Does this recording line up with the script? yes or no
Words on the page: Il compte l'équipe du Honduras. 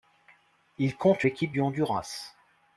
yes